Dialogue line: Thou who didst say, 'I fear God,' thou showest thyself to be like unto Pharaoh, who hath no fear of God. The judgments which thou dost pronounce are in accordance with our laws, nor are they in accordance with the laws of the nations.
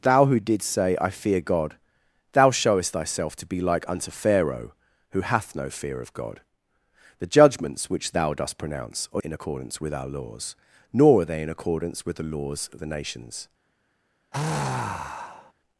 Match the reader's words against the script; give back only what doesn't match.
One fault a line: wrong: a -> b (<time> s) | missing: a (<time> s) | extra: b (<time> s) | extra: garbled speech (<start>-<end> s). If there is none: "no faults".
no faults